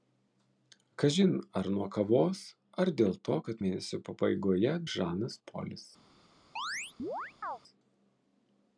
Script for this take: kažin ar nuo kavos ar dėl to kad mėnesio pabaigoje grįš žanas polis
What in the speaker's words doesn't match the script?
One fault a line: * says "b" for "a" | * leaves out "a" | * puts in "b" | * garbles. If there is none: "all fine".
* leaves out "grįš"